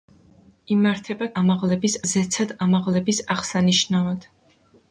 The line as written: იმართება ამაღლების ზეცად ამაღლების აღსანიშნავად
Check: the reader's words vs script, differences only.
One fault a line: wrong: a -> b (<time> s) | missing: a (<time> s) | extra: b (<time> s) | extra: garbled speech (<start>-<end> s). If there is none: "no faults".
no faults